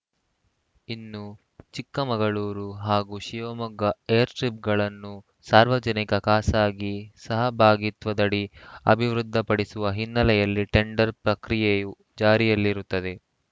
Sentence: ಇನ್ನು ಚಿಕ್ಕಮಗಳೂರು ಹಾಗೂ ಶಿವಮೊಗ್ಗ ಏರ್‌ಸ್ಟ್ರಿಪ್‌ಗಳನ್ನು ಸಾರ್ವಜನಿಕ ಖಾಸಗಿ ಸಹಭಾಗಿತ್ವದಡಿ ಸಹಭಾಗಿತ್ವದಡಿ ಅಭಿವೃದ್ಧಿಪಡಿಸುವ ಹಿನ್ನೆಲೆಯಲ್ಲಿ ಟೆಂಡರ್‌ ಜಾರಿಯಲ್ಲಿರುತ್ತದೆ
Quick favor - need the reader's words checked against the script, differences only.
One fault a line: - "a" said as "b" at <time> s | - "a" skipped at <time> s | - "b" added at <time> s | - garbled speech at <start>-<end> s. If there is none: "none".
- "ಸಹಭಾಗಿತ್ವದಡಿ" skipped at 8.4 s
- "ಪ್ರಕ್ರಿಯೆಯು" added at 11.2 s